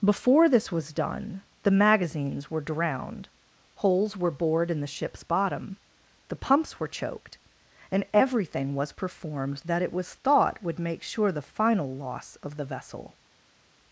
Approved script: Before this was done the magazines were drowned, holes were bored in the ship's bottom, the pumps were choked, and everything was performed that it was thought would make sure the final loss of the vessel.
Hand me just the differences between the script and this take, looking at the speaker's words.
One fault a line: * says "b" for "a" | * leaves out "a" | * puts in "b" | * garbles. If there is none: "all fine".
all fine